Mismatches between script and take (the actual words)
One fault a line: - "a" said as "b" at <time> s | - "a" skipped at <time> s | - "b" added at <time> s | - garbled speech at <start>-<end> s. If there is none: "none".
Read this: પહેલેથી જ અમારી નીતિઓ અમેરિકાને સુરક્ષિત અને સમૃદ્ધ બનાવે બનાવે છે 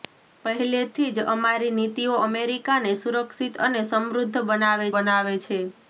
none